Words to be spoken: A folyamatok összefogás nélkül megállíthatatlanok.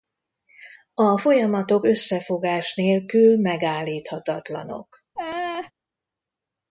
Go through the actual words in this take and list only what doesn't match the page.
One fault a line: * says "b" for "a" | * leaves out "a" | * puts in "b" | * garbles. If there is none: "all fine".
all fine